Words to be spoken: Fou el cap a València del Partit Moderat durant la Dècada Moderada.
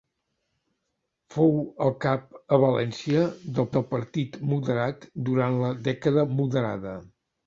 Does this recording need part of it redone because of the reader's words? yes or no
yes